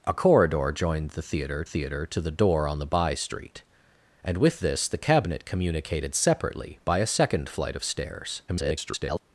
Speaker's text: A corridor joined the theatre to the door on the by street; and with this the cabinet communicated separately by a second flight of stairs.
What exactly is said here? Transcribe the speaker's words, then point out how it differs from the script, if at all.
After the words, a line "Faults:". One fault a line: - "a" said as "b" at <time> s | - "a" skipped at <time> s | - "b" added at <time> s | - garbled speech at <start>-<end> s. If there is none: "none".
A corridor joined the theatre theatre to the door on the by street; and with this the cabinet communicated separately by a second flight of stairs. [garbled]
Faults:
- "theatre" added at 1.6 s
- garbled speech at 8.5-9.2 s